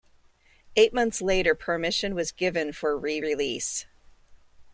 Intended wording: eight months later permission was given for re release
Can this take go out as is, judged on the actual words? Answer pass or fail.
pass